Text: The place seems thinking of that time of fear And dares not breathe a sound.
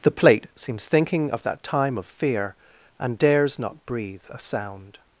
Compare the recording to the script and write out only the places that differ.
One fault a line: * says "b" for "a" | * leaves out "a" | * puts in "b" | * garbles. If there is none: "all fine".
* says "plate" for "place"